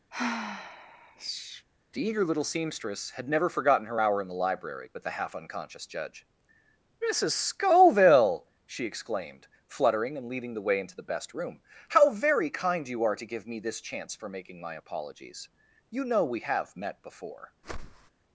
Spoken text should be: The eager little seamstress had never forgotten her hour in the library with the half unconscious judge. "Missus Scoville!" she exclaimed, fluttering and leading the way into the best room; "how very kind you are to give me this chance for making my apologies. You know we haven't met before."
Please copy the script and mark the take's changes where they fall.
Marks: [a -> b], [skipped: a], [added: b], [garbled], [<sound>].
[sigh] The eager little seamstress had never forgotten her hour in the library with the half unconscious judge. "Missus Scoville!" she exclaimed, fluttering and leading the way into the best room; "how very kind you are to give me this chance for making my apologies. You know we [haven't -> have] met before." [whoosh]